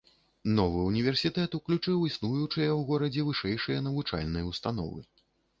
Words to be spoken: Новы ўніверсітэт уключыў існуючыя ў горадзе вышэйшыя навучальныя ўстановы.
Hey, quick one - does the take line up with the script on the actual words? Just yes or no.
yes